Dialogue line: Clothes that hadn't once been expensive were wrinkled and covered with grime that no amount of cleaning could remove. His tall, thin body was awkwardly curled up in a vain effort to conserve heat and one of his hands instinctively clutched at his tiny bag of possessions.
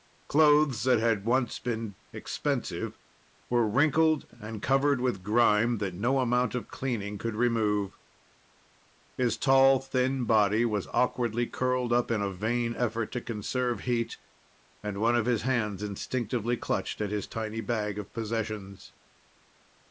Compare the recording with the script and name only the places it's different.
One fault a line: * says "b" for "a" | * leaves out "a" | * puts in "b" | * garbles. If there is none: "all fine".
* says "had" for "hadn't"